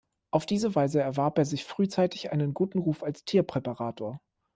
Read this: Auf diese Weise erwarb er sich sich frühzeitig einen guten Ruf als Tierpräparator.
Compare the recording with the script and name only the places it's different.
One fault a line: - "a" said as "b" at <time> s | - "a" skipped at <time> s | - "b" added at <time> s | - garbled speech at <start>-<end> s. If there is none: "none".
- "sich" skipped at 1.6 s